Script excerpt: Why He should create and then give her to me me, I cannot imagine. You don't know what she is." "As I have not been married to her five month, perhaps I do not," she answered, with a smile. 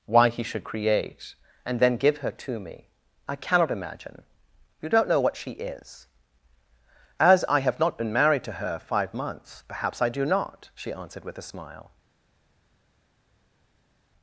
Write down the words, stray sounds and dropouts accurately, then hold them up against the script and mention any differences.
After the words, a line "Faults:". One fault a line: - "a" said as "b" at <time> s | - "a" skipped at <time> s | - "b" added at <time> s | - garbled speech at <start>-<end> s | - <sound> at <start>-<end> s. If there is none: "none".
Why He should create and then give her to me, I cannot imagine. You don't know what she is." "As I have not been married to her five months, perhaps I do not," she answered, with a smile.
Faults:
- "me" skipped at 2.9 s
- "month" said as "months" at 9.1 s